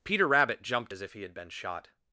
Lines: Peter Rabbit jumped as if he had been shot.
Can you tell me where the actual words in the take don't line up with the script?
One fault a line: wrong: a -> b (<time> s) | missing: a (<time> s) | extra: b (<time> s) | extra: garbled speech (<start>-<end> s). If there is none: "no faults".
no faults